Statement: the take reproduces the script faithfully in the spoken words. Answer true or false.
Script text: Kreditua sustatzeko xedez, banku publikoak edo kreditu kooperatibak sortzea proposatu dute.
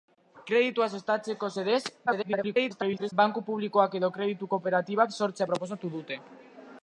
false